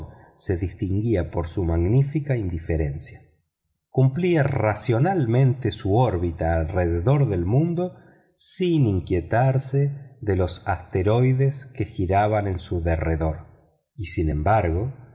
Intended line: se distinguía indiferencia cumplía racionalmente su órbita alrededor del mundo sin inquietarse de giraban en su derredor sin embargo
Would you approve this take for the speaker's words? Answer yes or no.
no